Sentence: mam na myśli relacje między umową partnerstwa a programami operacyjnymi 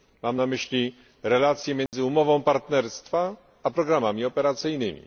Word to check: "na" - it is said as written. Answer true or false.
true